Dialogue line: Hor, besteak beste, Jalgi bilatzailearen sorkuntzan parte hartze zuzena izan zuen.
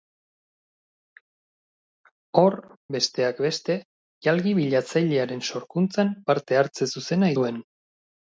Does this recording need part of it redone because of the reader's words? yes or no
yes